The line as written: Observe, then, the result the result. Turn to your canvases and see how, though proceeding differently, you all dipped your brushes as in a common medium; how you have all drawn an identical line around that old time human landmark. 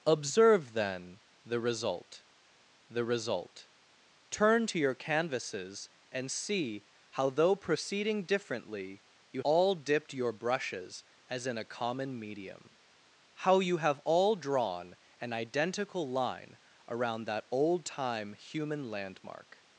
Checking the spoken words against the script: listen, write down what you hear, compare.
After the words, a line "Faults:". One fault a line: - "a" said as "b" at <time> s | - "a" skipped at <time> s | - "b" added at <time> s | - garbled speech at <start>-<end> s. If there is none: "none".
Observe, then, the result the result. Turn to your canvases and see how, though proceeding differently, you all dipped your brushes as in a common medium; how you have all drawn an identical line around that old time human landmark.
Faults:
none